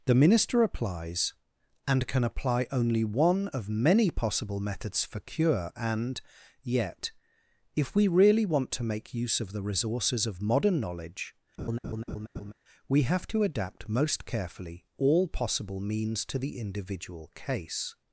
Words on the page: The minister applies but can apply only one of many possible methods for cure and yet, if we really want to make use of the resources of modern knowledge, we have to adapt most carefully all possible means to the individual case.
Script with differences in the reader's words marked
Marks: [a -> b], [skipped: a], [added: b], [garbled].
The minister applies [but -> and] can apply only one of many possible methods for cure and yet, if we really want to make use of the resources of modern knowledge, we have to adapt most carefully all possible means to the individual case.